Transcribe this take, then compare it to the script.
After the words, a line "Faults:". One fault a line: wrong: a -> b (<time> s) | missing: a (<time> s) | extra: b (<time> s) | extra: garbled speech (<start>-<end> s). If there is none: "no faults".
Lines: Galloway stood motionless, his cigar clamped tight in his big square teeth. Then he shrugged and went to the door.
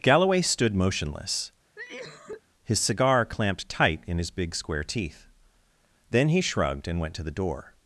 Galloway stood motionless, his cigar clamped tight in his big square teeth. Then he shrugged and went to the door.
Faults:
no faults